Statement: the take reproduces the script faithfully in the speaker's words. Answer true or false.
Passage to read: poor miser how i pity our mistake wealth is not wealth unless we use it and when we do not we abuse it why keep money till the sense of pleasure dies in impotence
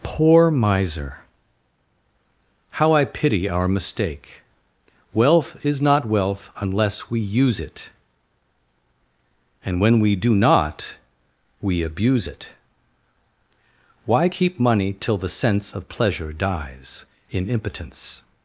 true